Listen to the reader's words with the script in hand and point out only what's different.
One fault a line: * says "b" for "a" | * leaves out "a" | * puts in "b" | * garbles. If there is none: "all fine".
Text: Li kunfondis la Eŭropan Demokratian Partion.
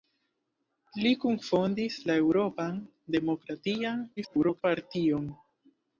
* garbles